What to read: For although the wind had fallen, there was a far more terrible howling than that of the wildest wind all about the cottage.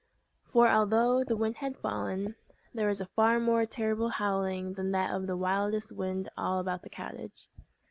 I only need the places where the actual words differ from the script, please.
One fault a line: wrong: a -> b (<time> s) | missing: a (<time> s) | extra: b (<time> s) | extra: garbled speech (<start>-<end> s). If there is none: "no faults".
no faults